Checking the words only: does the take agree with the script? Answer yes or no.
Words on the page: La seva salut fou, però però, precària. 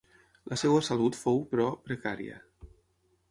no